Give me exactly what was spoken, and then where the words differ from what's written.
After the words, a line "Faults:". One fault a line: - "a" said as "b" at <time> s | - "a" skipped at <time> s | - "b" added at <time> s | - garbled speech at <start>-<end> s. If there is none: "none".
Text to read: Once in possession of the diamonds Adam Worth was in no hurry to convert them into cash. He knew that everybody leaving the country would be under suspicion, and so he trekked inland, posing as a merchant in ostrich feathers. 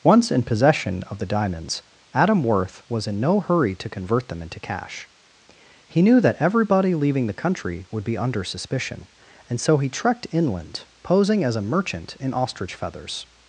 Once in possession of the diamonds Adam Worth was in no hurry to convert them into cash. He knew that everybody leaving the country would be under suspicion, and so he trekked inland, posing as a merchant in ostrich feathers.
Faults:
none